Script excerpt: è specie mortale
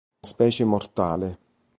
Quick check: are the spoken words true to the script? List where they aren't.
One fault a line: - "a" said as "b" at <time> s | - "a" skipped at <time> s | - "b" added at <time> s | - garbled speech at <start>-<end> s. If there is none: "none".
none